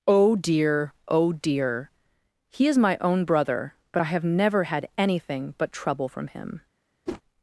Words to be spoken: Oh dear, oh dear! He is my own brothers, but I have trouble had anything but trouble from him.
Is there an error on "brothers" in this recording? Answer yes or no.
yes